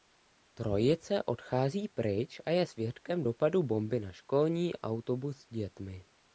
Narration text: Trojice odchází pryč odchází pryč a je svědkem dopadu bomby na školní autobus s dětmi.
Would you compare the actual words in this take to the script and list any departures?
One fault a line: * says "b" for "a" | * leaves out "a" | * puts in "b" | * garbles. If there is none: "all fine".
* leaves out "odchází pryč"